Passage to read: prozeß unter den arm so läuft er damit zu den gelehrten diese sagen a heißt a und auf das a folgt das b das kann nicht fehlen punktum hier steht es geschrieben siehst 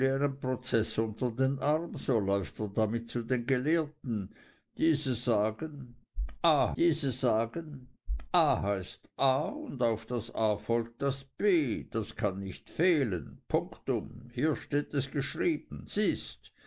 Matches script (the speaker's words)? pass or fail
fail